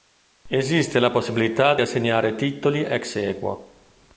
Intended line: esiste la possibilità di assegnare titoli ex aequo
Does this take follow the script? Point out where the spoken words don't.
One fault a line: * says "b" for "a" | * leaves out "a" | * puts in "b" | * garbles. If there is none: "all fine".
all fine